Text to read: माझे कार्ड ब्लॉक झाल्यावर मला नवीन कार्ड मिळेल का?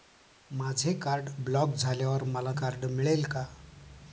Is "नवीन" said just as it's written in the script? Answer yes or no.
no